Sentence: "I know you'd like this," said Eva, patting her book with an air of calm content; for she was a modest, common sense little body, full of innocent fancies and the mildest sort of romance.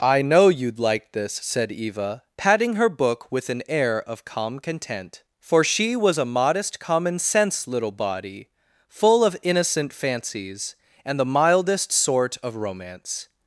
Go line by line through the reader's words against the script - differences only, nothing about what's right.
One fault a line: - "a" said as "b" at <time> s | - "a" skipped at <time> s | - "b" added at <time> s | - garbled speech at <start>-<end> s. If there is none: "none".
none